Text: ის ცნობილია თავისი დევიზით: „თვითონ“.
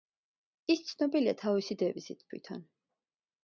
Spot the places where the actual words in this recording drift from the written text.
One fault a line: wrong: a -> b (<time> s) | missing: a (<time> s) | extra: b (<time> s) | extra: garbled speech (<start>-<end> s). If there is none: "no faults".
no faults